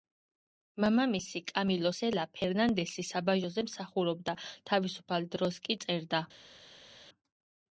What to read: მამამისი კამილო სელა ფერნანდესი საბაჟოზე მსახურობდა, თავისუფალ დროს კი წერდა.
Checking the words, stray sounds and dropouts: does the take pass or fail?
pass